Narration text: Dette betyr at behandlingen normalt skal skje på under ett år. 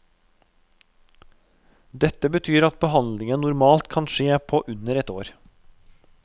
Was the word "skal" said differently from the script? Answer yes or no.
yes